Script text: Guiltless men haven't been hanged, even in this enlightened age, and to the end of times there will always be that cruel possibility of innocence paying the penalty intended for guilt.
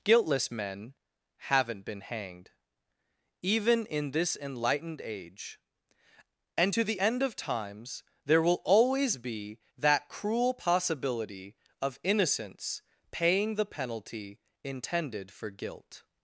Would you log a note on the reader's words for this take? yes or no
no